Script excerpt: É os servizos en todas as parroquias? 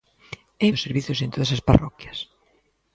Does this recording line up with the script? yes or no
yes